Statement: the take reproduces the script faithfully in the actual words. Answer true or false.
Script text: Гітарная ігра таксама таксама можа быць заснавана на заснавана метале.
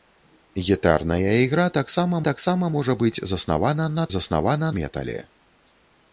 true